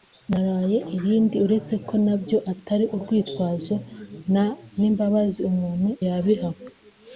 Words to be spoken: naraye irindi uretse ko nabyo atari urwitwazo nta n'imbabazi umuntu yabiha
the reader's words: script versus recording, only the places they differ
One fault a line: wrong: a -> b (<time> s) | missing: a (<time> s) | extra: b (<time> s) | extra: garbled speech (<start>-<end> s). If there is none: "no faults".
no faults